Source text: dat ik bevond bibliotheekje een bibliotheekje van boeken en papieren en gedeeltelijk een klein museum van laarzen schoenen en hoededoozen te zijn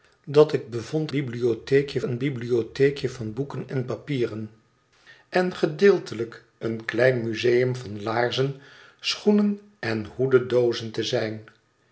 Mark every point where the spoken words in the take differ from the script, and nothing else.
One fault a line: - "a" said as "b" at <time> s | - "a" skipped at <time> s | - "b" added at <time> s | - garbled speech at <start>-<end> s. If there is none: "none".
none